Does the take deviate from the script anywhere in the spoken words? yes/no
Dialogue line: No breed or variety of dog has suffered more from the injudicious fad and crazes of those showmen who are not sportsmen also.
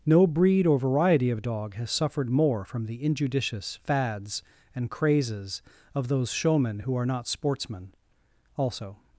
yes